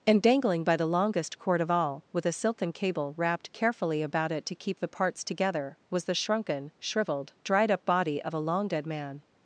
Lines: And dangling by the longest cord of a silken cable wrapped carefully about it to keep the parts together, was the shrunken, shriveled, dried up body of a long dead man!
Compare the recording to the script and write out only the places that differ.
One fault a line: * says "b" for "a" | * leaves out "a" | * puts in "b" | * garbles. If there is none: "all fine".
* puts in "all with"